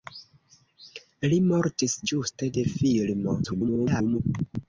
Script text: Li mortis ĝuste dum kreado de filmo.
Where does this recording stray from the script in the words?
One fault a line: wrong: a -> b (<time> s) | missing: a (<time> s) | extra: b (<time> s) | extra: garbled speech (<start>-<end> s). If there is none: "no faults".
missing: dum kreado (2.5 s)
extra: garbled speech (3.4-4.2 s)